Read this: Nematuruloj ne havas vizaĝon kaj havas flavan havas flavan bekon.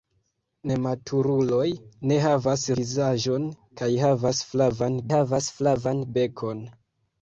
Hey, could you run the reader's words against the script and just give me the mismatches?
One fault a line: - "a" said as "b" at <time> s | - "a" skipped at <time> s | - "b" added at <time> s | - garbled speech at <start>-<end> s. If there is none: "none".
none